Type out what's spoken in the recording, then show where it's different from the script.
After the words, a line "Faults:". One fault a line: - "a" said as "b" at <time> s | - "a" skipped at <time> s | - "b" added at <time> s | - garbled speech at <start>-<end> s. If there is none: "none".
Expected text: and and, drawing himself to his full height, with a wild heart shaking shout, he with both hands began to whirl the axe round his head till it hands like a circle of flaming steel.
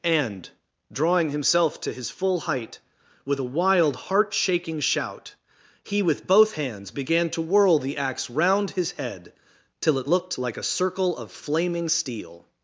and, drawing himself to his full height, with a wild heart shaking shout, he with both hands began to whirl the axe round his head till it looked like a circle of flaming steel.
Faults:
- "and" skipped at 0.5 s
- "hands" said as "looked" at 10.1 s